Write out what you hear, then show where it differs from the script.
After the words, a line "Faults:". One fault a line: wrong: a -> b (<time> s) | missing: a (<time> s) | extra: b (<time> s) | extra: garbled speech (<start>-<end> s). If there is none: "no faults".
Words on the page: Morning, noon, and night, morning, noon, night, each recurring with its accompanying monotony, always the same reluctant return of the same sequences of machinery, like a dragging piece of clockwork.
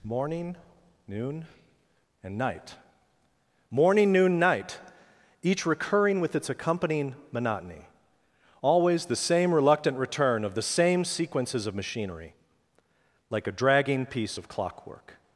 Morning, noon, and night, morning, noon, night, each recurring with its accompanying monotony, always the same reluctant return of the same sequences of machinery, like a dragging piece of clockwork.
Faults:
no faults